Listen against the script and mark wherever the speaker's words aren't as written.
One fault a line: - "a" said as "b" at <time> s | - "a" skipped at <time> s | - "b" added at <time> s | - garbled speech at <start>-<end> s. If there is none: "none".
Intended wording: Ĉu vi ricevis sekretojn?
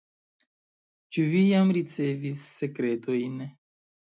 - "jam" added at 1.5 s